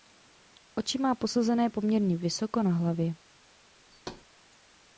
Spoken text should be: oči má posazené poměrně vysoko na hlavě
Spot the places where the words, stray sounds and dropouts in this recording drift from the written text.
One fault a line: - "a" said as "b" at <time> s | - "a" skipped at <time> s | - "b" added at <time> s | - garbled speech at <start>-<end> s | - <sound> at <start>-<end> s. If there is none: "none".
- thud at 3.9-4.3 s